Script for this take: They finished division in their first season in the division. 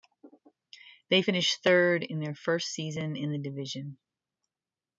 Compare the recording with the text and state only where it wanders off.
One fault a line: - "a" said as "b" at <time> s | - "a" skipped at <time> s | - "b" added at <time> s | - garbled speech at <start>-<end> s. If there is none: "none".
- "division" said as "third" at 1.6 s